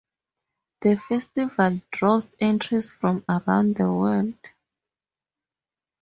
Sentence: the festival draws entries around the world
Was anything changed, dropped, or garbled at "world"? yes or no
no